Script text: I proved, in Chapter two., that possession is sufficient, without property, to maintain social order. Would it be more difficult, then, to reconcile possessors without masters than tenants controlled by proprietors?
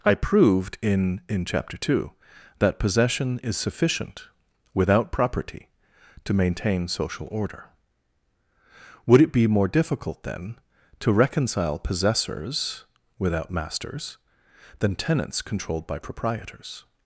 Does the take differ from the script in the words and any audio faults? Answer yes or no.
yes